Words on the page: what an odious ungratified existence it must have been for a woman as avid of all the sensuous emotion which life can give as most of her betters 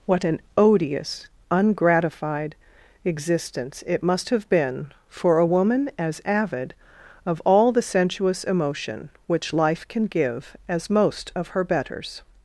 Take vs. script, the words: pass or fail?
pass